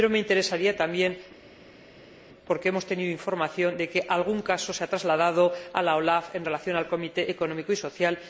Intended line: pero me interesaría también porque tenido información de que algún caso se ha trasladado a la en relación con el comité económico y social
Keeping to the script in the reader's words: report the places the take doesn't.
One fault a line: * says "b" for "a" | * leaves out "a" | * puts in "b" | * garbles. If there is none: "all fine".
* puts in "hemos"
* puts in "olaf"